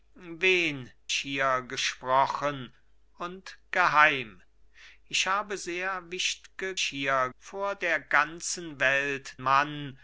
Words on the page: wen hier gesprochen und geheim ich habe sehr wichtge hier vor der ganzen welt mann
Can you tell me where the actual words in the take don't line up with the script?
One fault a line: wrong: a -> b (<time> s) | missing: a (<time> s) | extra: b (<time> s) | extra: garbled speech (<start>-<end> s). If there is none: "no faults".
no faults